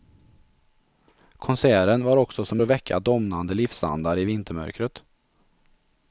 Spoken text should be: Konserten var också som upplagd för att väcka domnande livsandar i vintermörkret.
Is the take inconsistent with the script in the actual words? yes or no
yes